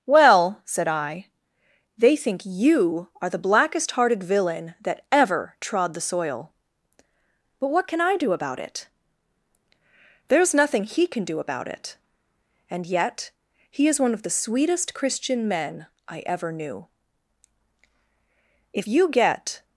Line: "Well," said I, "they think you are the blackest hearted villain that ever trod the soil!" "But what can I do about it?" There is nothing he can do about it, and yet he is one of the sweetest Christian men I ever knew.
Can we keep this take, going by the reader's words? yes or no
no